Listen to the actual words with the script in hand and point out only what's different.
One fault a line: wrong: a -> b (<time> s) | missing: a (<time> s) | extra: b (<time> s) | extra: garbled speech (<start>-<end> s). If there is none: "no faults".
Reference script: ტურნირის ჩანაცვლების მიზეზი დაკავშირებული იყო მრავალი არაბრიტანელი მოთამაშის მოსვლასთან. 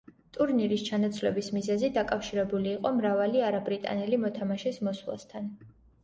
no faults